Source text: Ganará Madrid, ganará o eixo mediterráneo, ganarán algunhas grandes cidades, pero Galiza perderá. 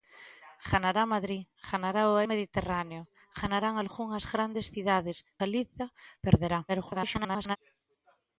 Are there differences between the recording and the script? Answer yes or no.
yes